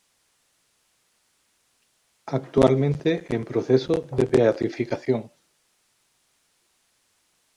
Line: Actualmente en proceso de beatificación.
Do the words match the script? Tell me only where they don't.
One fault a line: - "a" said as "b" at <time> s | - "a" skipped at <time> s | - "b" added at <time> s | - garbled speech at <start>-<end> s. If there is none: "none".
none